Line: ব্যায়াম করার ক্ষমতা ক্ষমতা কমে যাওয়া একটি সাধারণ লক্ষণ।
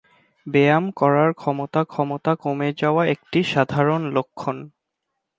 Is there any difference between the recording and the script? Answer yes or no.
no